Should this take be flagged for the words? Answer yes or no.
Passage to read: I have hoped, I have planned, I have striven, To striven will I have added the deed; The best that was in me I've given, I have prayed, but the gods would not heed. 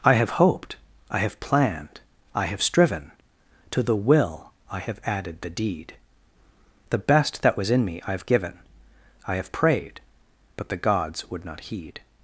yes